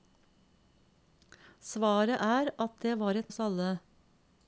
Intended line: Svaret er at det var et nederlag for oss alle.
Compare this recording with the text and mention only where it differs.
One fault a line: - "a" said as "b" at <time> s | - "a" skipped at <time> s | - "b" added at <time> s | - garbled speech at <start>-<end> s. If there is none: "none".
- "nederlag for" skipped at 3.3 s